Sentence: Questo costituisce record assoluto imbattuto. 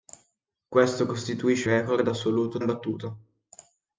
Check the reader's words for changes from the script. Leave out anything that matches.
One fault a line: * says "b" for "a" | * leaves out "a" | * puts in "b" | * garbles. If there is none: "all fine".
all fine